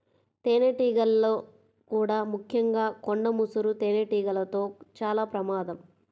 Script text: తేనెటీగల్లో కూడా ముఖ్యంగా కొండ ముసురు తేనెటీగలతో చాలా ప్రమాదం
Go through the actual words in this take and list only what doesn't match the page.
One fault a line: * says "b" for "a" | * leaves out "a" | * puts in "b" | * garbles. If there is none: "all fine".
all fine